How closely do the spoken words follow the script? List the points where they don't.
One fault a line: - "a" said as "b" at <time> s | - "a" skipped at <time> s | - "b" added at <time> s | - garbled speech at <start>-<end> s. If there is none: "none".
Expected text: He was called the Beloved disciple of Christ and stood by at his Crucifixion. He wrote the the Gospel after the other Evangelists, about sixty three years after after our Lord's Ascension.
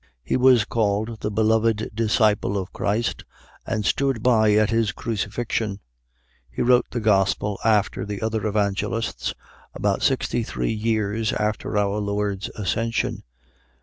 - "the" skipped at 7.0 s
- "after" skipped at 11.8 s